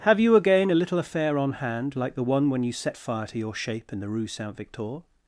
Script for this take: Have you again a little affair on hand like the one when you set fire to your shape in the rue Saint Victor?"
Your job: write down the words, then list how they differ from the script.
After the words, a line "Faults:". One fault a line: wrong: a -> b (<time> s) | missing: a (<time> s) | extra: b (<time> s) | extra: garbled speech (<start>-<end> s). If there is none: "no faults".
Have you again a little affair on hand like the one when you set fire to your shape in the rue Saint Victor?"
Faults:
no faults